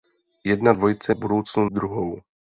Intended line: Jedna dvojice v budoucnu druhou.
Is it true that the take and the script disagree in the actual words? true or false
false